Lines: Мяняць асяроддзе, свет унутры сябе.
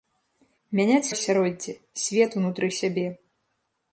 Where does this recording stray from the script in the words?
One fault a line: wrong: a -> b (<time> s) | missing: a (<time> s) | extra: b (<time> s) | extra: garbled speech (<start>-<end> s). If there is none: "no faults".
no faults